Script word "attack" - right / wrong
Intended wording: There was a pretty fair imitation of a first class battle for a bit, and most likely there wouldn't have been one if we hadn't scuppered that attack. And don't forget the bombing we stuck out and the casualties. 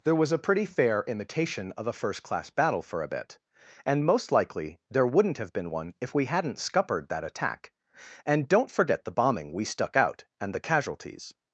right